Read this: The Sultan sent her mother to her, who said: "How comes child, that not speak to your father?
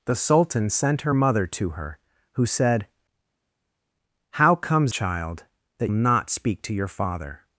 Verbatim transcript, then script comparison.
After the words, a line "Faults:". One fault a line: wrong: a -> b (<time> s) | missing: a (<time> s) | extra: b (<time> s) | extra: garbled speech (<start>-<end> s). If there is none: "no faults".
The Sultan sent her mother to her, who said: "How comes child, that not speak to your father?
Faults:
no faults